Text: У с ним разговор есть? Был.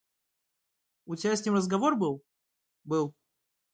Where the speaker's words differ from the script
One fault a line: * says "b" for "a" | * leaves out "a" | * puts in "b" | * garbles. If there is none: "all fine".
* puts in "тебя"
* says "был" for "есть"